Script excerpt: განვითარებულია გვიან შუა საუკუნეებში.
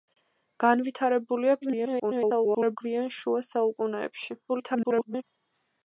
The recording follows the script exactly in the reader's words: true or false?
false